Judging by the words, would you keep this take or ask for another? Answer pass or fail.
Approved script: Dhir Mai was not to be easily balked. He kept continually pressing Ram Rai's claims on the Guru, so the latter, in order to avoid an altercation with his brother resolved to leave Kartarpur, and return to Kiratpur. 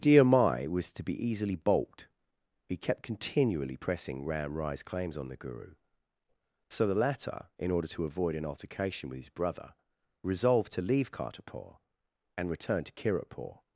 fail